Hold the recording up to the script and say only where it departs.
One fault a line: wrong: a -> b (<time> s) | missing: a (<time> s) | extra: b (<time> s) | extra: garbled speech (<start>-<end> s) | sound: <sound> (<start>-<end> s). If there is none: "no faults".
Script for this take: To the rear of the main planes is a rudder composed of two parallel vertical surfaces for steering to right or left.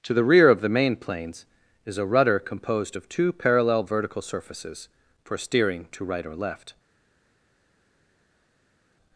no faults